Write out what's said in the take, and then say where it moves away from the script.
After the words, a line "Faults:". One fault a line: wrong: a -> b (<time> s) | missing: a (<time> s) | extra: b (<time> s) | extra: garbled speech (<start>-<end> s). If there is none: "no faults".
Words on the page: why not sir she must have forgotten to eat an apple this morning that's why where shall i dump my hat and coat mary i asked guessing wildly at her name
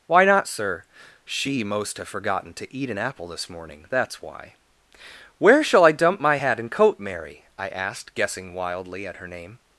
why not sir she most have forgotten to eat an apple this morning that's why where shall i dump my hat and coat mary i asked guessing wildly at her name
Faults:
wrong: must -> most (1.6 s)